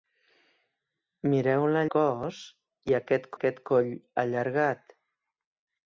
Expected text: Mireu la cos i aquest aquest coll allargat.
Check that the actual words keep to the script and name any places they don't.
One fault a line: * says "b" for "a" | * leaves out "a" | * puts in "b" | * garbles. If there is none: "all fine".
all fine